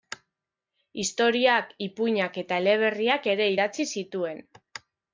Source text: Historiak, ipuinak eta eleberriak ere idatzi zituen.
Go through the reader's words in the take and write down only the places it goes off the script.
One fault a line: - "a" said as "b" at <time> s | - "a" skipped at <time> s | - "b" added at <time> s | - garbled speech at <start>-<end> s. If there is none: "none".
none